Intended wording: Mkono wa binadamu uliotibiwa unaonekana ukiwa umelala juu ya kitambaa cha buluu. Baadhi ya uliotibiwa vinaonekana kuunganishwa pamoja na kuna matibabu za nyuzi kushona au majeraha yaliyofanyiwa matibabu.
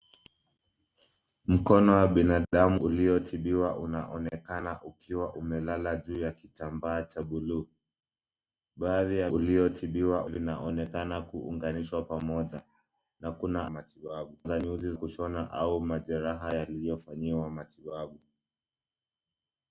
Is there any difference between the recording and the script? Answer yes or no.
no